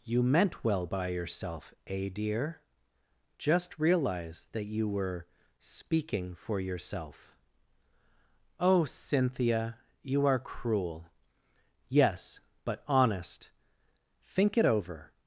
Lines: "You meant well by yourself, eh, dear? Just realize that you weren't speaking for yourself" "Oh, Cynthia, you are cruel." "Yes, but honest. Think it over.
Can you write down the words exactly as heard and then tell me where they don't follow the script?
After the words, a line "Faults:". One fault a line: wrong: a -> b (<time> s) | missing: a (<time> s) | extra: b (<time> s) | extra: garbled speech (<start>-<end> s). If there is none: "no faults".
"You meant well by yourself, eh, dear? Just realize that you were speaking for yourself" "Oh, Cynthia, you are cruel." "Yes, but honest. Think it over.
Faults:
wrong: weren't -> were (4.9 s)